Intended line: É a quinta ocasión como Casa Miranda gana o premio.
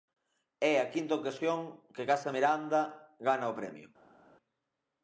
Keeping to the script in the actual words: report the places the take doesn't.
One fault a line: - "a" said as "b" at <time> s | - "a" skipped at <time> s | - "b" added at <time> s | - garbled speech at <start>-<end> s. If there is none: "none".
- "como" said as "que" at 1.9 s